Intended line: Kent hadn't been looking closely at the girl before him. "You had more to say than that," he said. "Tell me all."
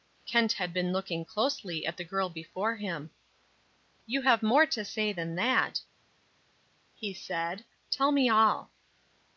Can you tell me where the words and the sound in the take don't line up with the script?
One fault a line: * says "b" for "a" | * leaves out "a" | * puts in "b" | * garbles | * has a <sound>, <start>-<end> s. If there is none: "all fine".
* says "had" for "hadn't"
* says "have" for "had"